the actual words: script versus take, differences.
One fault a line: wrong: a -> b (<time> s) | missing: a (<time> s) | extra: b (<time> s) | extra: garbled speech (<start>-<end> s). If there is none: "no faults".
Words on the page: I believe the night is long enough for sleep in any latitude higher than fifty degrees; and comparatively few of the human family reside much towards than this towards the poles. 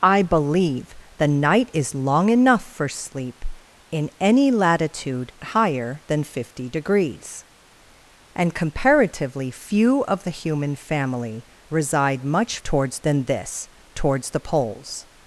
no faults